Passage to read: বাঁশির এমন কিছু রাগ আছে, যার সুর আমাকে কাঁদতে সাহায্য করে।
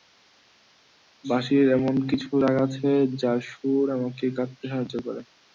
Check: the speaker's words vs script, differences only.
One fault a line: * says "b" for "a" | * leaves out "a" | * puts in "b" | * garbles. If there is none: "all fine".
all fine